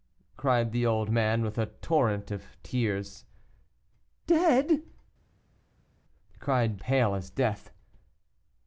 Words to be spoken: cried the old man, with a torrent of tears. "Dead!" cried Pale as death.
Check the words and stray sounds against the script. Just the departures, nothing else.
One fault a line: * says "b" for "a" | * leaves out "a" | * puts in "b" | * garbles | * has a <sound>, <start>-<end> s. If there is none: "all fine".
all fine